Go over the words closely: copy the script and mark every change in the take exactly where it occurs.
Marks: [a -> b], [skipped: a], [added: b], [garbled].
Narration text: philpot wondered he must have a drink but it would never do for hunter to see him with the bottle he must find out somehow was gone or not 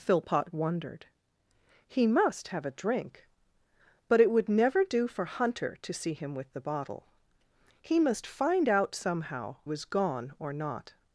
philpot wondered he must have a drink but it would never do for hunter to see him with the bottle he must find out somehow was gone or not